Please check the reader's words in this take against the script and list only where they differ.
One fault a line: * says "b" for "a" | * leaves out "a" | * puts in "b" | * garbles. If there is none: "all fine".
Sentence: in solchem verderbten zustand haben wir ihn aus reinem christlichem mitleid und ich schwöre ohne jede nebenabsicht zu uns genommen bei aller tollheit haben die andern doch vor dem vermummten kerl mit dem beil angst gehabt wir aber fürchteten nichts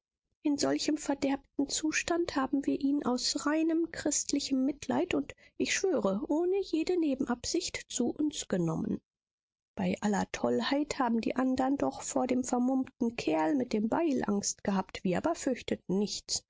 all fine